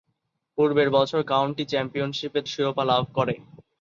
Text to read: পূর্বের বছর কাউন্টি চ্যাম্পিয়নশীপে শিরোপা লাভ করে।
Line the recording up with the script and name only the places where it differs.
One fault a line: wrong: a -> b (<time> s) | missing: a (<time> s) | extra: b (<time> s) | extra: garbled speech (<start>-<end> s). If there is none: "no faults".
no faults